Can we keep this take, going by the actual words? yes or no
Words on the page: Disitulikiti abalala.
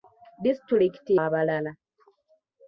yes